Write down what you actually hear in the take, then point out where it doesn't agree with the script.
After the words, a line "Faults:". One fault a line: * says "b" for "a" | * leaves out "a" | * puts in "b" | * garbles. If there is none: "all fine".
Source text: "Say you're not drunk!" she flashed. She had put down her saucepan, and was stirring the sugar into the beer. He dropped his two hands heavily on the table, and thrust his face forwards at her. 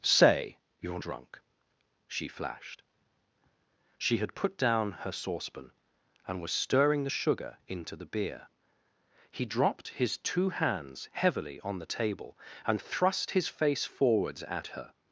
"Say you're drunk!" she flashed. She had put down her saucepan, and was stirring the sugar into the beer. He dropped his two hands heavily on the table, and thrust his face forwards at her.
Faults:
* leaves out "not"